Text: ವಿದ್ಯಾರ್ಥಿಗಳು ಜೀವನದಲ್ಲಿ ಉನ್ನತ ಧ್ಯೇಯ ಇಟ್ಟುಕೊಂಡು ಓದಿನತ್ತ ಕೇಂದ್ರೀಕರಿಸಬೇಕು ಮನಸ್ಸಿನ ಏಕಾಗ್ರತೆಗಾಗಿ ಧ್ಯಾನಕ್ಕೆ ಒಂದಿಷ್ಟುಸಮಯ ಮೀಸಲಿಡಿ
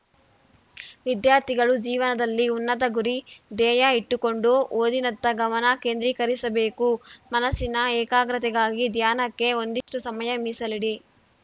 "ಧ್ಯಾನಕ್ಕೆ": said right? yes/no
yes